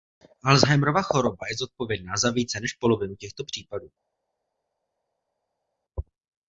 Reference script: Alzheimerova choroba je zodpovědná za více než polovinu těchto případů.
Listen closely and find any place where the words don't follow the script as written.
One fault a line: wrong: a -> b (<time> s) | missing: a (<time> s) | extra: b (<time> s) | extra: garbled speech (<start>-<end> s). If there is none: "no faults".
no faults